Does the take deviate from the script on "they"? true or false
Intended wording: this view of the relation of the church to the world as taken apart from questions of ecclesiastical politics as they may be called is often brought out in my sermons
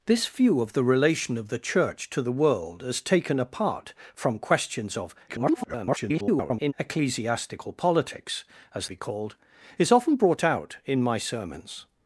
true